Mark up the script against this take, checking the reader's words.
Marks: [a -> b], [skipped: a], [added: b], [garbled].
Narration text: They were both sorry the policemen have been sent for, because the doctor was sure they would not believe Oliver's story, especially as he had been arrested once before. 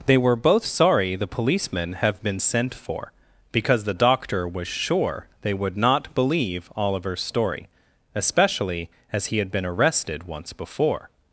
They were both sorry the policemen have been sent for, because the doctor was sure they would not believe Oliver's story, especially as he had been arrested once before.